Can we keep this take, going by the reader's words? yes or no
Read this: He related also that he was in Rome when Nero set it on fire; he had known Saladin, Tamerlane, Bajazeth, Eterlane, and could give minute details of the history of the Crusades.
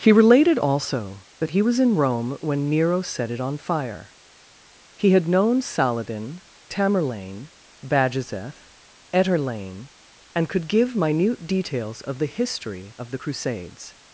yes